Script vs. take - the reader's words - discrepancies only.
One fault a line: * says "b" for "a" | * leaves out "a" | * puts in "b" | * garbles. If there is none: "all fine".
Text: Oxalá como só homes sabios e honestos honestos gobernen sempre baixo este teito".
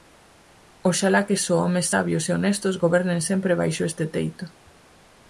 * says "que" for "como"
* leaves out "honestos"